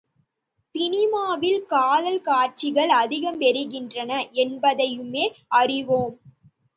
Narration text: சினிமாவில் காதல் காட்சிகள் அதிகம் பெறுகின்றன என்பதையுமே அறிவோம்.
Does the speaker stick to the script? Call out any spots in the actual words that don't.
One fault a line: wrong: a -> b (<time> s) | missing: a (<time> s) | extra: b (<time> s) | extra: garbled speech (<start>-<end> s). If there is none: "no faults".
no faults